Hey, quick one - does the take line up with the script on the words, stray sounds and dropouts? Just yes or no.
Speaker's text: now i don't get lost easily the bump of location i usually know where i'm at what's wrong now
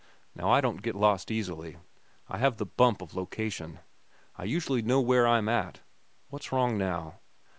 no